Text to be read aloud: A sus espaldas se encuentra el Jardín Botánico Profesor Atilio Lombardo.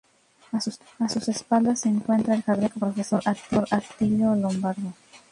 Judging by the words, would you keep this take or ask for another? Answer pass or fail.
pass